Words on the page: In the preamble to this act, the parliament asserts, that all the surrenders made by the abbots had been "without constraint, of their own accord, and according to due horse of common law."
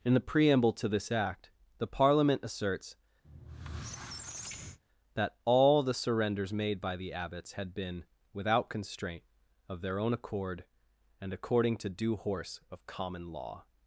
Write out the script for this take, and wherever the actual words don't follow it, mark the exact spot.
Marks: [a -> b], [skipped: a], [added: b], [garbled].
In the preamble to this act, the parliament asserts, that all the surrenders made by the abbots had been "without constraint, of their own accord, and according to due horse of common law."